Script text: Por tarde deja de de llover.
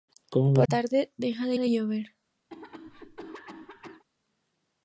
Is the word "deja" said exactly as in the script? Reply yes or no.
yes